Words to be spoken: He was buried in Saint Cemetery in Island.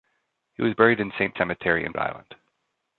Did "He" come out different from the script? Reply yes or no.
no